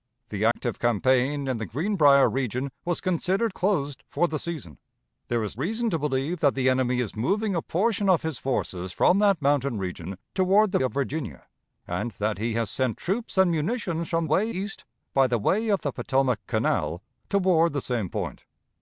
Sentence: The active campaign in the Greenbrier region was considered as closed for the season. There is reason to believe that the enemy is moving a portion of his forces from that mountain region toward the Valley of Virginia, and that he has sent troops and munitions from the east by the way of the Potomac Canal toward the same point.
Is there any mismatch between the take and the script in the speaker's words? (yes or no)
yes